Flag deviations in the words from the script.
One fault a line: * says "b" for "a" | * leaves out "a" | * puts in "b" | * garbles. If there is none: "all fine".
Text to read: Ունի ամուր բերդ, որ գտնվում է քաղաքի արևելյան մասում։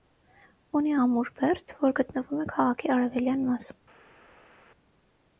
all fine